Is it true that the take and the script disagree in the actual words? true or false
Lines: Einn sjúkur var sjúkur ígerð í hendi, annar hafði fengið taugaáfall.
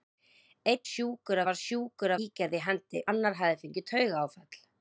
false